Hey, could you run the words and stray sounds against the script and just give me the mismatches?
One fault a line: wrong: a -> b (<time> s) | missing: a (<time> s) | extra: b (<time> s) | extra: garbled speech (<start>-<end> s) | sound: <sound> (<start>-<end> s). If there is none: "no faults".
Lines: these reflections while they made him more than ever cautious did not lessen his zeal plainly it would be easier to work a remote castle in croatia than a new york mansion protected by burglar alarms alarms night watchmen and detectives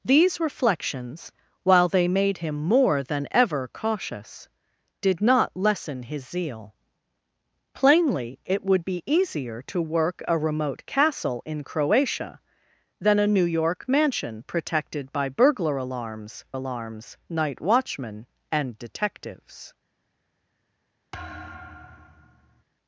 sound: thud (21.1-22.6 s)